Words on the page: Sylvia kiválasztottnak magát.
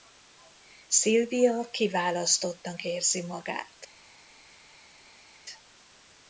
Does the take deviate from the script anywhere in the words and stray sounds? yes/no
yes